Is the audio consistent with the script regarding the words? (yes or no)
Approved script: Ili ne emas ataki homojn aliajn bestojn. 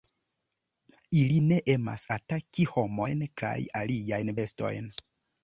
no